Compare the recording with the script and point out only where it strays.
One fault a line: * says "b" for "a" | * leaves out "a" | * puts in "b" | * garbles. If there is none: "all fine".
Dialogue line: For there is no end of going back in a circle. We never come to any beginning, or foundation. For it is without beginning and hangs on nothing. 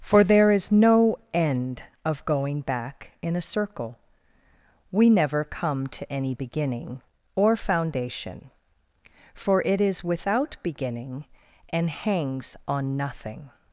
all fine